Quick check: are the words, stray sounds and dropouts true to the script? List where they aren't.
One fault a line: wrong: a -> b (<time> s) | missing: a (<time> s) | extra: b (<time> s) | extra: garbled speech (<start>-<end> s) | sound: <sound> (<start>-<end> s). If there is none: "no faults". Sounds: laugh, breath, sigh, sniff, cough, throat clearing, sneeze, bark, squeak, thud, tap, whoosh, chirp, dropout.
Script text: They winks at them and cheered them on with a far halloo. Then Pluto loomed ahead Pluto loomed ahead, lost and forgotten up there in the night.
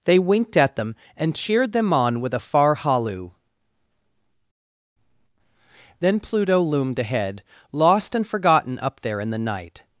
wrong: winks -> winked (0.2 s)
missing: Pluto loomed ahead (7.4 s)